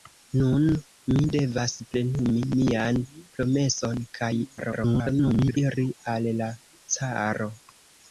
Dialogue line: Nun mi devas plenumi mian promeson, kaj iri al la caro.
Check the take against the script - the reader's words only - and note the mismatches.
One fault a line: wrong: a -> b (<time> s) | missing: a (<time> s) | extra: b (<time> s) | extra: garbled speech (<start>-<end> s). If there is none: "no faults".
extra: garbled speech (4.6-5.6 s)